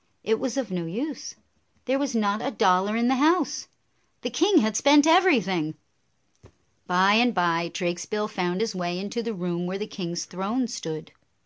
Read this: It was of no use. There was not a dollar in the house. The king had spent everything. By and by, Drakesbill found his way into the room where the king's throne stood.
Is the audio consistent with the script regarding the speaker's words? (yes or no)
yes